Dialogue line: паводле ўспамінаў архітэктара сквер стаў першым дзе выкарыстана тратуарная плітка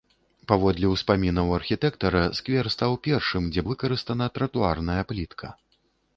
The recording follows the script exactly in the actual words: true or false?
true